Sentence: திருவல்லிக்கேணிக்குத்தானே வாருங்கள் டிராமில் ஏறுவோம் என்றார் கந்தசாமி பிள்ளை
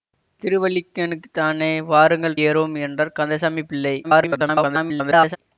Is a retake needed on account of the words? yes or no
yes